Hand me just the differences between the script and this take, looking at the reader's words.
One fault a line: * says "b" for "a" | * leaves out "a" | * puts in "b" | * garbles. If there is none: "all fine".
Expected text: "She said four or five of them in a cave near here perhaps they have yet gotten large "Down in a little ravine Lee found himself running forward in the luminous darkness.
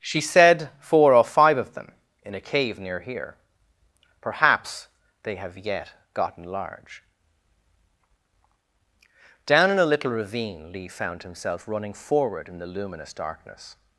all fine